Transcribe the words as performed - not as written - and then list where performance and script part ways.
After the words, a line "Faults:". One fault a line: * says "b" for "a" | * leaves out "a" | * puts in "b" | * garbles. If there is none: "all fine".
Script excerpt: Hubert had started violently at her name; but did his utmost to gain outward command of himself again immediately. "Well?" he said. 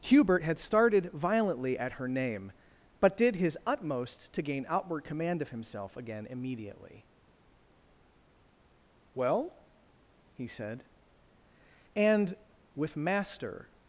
Hubert had started violently at her name; but did his utmost to gain outward command of himself again immediately. "Well?" he said. "And with Master
Faults:
* puts in "And with Master"